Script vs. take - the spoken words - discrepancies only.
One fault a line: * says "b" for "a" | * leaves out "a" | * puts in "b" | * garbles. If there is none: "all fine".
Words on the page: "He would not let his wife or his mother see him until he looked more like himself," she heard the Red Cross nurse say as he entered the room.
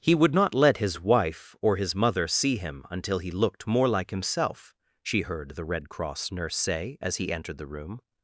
all fine